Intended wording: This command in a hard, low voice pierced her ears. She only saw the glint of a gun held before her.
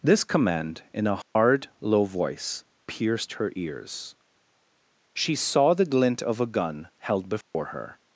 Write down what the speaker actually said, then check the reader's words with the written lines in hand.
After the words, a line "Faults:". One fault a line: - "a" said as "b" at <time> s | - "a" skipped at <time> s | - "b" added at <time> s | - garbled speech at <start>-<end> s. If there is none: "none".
This command in a hard, low voice pierced her ears. She saw the glint of a gun held before her.
Faults:
- "only" skipped at 5.3 s